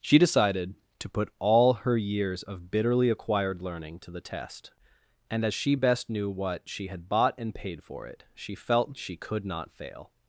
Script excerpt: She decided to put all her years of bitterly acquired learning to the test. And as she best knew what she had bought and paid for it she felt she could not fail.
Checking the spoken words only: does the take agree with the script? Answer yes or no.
yes